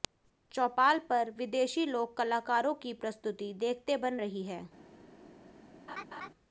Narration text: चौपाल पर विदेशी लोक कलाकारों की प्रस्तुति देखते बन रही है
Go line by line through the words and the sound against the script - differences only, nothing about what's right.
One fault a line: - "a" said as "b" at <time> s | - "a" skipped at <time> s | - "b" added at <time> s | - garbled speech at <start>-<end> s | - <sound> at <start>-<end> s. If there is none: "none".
- laugh at 5.9-6.3 s